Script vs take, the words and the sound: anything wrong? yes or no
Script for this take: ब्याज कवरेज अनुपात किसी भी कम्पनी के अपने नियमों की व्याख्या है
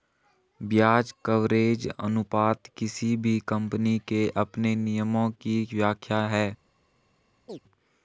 yes